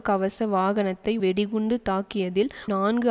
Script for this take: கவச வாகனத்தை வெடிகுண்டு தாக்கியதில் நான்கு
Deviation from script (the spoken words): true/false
false